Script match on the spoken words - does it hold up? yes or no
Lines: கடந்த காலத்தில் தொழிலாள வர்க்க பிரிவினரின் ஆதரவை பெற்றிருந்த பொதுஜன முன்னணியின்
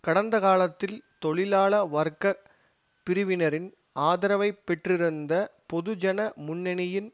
yes